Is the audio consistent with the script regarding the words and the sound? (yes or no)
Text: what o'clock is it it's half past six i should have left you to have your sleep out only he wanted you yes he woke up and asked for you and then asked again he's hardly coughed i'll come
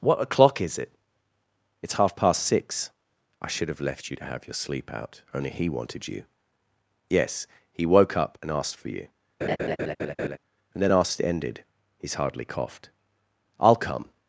no